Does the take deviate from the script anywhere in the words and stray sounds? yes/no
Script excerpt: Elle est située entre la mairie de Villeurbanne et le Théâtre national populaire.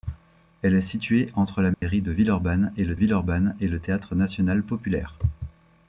yes